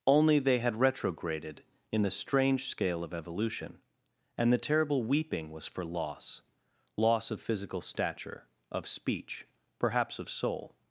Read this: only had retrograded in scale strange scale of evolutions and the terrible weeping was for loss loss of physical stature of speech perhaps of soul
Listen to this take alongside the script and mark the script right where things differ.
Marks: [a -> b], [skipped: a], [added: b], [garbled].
only [added: they] had retrograded in [scale -> the] strange scale of [evolutions -> evolution] and the terrible weeping was for loss loss of physical stature of speech perhaps of soul